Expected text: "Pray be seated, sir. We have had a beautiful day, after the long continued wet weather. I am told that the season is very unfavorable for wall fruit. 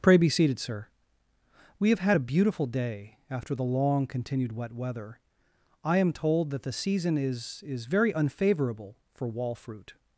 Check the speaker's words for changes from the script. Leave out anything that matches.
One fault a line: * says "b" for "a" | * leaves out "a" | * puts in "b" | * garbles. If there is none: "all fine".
* puts in "is"